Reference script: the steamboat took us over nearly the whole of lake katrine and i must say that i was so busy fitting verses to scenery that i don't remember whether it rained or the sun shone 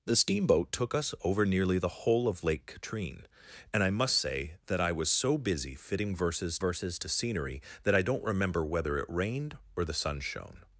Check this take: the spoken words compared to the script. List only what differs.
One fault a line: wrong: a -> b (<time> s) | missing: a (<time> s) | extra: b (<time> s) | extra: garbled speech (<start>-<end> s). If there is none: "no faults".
extra: verses (6.6 s)